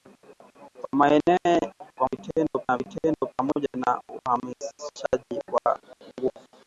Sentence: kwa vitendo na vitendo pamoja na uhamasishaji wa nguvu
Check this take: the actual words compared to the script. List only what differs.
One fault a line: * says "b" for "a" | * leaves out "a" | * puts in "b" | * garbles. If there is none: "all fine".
all fine